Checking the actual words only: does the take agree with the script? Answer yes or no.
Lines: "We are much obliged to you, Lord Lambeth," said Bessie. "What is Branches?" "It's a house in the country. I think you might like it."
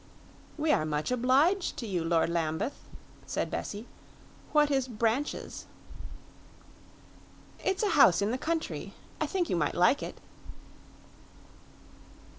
yes